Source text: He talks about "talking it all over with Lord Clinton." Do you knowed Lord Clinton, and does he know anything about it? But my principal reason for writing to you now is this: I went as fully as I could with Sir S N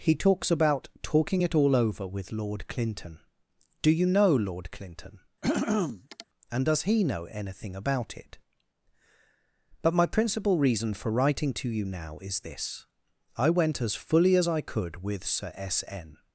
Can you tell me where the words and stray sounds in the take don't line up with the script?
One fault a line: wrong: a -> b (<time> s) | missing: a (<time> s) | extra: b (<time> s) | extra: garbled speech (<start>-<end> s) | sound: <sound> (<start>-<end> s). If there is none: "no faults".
wrong: knowed -> know (4.1 s)
sound: throat clearing (5.4-6.3 s)